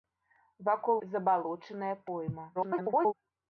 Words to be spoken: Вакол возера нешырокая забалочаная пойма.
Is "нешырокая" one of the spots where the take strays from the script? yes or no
yes